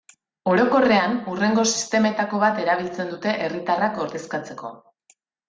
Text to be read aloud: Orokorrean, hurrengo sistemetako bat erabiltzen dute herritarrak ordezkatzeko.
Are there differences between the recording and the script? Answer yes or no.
no